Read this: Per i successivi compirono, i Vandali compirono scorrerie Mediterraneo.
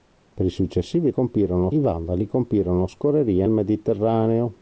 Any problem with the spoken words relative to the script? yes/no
no